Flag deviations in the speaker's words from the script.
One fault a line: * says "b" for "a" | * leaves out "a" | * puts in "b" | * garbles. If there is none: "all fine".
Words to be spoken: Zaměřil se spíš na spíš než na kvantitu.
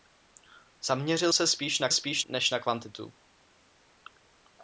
all fine